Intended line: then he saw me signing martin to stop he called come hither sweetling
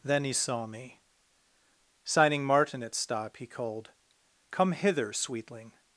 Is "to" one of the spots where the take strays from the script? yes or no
yes